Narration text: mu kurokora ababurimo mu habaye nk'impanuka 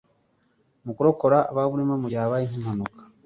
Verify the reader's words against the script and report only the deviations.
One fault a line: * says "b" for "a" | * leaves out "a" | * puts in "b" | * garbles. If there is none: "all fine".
* puts in "gihe"